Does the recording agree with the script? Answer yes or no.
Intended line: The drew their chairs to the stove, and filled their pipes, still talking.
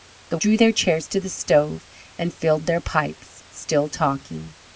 yes